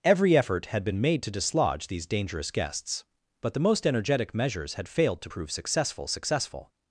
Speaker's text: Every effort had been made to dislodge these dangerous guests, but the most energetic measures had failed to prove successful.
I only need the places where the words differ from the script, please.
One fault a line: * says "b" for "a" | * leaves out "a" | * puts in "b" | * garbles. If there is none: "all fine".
* puts in "successful"